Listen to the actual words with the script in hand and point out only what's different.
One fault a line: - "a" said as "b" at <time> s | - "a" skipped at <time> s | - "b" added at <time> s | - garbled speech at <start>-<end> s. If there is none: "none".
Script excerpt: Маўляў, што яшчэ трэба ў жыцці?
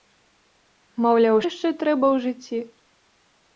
- "што" skipped at 1.4 s